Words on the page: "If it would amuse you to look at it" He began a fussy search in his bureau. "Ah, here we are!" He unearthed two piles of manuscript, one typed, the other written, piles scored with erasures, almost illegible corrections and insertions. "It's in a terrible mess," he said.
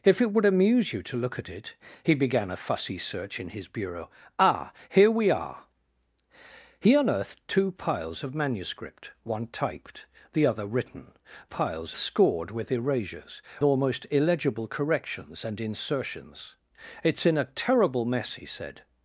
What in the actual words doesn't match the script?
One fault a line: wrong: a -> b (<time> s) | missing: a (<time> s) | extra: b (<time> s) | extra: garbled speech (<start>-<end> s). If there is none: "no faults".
no faults